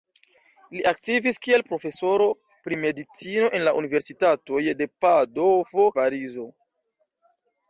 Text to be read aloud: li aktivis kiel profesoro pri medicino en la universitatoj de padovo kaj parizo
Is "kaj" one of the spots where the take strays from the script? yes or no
yes